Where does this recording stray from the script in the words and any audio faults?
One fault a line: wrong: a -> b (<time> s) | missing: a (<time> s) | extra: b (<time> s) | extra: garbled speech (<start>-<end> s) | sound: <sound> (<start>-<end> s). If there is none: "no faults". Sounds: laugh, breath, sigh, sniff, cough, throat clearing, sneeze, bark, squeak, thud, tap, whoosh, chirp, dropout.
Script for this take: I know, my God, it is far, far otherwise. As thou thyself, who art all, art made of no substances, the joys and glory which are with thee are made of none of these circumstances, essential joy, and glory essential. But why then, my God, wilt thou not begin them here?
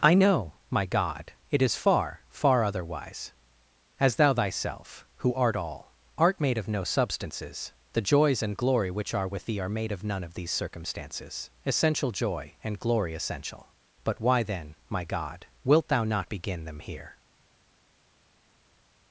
no faults